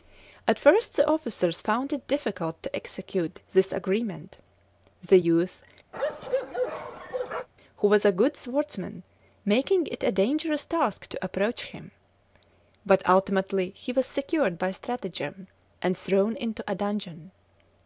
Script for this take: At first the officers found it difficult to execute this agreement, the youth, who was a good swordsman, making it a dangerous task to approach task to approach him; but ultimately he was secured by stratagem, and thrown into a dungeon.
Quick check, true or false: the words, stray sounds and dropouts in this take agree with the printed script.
false